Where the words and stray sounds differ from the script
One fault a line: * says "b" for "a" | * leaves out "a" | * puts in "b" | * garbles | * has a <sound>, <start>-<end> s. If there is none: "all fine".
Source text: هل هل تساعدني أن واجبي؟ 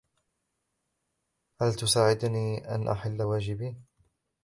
* leaves out "هل"
* puts in "أحل"